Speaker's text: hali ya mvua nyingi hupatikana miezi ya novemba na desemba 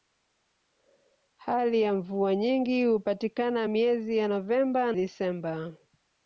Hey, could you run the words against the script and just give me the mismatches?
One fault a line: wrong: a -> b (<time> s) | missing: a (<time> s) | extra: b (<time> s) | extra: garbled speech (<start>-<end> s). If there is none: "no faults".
missing: na (4.9 s)